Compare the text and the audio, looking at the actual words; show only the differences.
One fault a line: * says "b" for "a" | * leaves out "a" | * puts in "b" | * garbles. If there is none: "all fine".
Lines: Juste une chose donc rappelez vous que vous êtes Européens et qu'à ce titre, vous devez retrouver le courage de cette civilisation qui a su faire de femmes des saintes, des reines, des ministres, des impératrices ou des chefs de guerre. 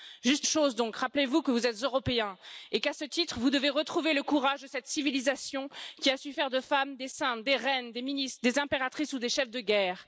* leaves out "une"